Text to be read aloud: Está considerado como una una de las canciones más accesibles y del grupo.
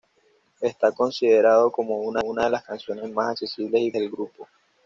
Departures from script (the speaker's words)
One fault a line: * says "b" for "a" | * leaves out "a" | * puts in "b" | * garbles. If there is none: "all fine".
all fine